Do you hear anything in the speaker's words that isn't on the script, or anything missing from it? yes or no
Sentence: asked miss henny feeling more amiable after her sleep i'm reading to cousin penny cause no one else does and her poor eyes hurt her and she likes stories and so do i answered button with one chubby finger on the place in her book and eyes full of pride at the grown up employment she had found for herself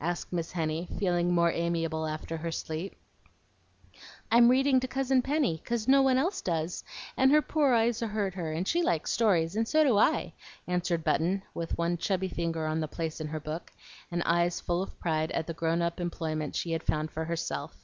no